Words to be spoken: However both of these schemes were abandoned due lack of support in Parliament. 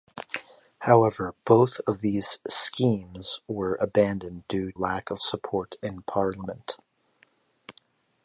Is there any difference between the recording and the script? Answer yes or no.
no